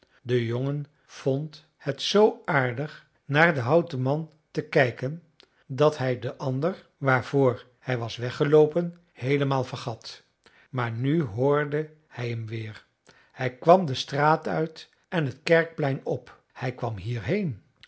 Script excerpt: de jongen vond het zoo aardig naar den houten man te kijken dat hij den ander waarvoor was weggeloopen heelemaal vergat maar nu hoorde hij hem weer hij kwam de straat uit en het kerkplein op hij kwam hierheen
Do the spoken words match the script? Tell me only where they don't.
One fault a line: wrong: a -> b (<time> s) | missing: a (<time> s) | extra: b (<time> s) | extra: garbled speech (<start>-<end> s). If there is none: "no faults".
extra: hij (7.8 s)